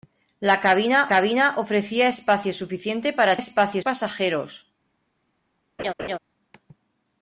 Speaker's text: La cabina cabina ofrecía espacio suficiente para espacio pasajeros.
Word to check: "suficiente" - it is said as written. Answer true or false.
true